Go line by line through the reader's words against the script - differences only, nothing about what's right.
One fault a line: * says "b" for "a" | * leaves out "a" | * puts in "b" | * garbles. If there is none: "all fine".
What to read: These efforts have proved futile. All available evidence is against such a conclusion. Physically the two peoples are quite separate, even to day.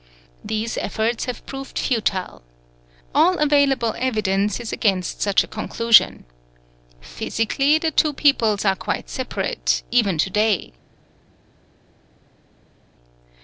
all fine